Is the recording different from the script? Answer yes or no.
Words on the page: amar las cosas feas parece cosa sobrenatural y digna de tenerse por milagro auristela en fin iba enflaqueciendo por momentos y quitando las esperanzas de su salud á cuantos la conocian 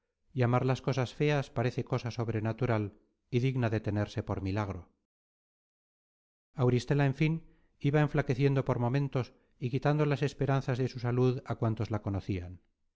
no